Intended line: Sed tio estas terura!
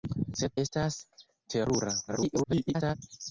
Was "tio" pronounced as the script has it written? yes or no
no